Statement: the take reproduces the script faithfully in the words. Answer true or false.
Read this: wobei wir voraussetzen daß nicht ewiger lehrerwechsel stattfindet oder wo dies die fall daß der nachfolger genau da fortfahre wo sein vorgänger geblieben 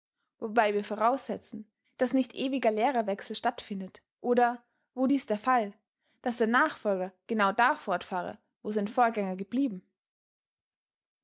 false